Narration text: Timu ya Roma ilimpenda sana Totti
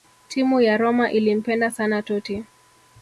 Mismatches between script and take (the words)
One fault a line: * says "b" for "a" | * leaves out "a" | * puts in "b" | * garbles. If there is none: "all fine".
all fine